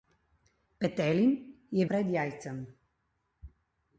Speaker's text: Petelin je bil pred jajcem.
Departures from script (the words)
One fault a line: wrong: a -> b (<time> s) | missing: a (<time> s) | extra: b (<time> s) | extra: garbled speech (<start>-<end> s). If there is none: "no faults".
missing: bil (1.9 s)